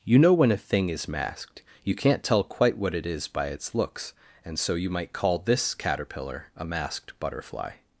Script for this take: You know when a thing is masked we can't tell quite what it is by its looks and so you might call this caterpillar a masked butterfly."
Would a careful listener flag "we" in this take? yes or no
yes